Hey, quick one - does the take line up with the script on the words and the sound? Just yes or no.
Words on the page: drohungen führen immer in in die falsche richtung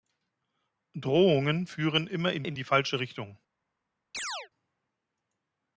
no